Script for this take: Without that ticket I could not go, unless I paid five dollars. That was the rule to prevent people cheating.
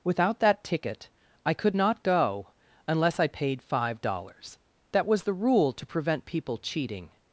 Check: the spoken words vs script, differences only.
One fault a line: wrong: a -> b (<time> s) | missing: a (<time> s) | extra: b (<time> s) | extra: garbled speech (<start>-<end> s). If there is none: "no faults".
no faults